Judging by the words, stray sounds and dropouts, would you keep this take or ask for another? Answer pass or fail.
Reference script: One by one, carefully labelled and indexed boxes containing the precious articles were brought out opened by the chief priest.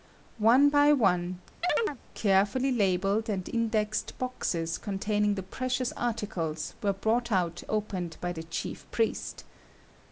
fail